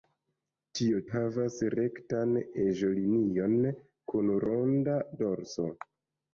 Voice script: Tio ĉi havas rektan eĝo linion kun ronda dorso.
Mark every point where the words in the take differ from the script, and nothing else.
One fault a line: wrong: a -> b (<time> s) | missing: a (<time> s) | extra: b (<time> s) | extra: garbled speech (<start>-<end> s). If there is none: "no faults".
missing: ĉi (1.0 s)